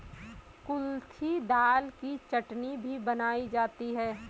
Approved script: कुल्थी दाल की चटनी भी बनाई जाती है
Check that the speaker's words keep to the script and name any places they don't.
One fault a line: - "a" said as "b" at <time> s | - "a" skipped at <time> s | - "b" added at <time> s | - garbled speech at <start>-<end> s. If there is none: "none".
none